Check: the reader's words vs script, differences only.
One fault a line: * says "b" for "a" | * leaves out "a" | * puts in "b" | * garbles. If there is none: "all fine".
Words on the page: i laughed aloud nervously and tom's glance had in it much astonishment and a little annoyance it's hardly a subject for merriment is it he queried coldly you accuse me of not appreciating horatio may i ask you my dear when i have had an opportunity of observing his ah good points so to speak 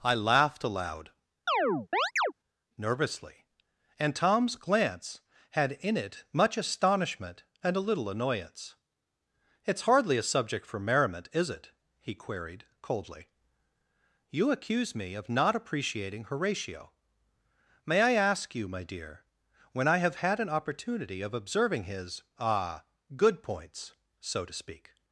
all fine